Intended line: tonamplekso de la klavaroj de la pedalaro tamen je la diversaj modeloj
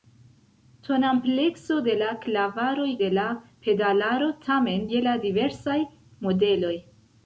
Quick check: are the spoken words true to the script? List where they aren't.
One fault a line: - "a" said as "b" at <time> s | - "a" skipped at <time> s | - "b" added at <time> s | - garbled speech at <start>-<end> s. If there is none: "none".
none